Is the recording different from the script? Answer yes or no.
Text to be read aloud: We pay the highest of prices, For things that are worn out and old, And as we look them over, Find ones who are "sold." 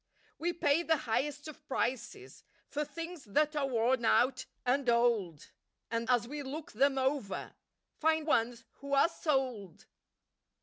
no